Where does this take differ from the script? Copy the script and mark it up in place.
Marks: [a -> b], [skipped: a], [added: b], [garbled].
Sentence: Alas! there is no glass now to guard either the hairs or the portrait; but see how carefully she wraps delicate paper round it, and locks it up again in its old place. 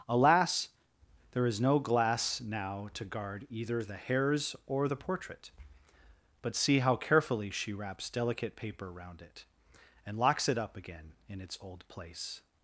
Alas! there is no glass now to guard either the hairs or the portrait; but see how carefully she wraps delicate paper round it, and locks it up again in its old place.